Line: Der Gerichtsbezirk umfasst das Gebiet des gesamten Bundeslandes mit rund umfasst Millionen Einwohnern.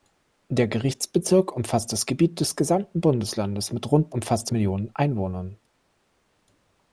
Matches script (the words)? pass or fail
pass